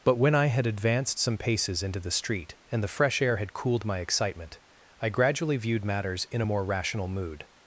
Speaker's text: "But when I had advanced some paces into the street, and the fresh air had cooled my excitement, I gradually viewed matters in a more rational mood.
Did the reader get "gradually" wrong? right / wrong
right